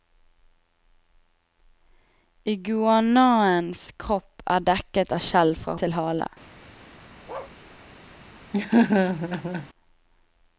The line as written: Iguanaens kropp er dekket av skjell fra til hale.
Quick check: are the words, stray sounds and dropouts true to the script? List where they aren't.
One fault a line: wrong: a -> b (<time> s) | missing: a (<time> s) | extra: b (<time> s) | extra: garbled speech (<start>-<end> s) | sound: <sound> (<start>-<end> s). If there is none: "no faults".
sound: bark (7.3-7.6 s)
sound: laugh (8.5-9.7 s)